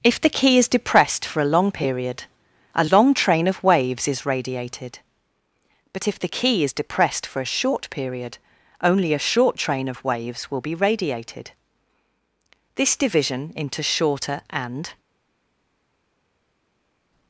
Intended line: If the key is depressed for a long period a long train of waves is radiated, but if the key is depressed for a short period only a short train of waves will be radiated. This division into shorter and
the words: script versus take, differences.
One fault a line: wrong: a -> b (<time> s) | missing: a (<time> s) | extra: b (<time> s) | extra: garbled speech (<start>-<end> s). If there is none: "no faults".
no faults